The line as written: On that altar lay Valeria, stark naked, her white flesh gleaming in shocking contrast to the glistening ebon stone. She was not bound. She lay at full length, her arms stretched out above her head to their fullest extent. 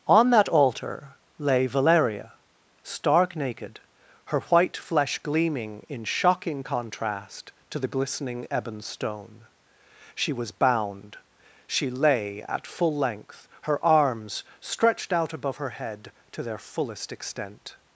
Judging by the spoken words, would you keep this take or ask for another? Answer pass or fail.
fail